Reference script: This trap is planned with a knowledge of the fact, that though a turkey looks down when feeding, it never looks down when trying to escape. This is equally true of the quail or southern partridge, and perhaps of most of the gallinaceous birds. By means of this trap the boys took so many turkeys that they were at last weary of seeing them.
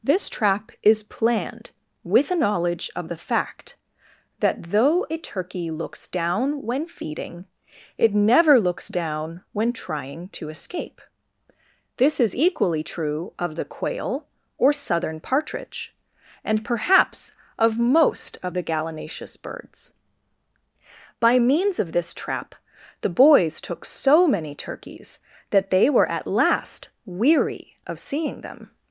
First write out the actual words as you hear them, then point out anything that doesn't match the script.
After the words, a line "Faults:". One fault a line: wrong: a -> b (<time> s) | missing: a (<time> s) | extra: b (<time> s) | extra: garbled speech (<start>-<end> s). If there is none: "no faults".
This trap is planned with a knowledge of the fact, that though a turkey looks down when feeding, it never looks down when trying to escape. This is equally true of the quail or southern partridge, and perhaps of most of the gallinaceous birds. By means of this trap the boys took so many turkeys that they were at last weary of seeing them.
Faults:
no faults